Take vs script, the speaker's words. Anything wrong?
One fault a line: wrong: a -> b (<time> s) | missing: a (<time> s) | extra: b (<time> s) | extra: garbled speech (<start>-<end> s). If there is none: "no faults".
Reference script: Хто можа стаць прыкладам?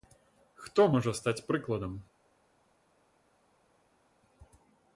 no faults